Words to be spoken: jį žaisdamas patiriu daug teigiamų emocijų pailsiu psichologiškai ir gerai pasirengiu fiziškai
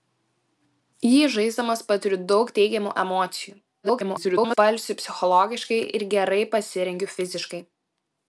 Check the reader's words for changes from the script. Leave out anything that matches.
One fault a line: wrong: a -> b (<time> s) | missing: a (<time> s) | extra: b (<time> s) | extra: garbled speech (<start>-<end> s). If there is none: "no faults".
extra: garbled speech (3.8-4.6 s)